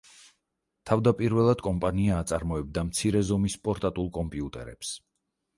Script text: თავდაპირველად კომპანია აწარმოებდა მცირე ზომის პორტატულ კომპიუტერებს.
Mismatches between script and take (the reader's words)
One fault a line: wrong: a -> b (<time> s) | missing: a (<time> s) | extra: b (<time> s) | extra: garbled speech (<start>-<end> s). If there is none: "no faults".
no faults